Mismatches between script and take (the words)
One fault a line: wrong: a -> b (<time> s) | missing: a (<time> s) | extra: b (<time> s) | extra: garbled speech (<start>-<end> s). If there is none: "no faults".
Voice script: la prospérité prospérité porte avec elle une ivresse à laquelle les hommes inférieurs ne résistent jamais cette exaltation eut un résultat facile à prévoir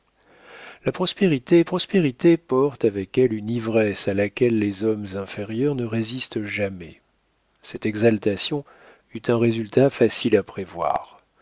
no faults